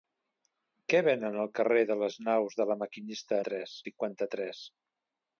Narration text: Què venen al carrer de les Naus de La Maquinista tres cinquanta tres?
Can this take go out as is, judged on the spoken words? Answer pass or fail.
pass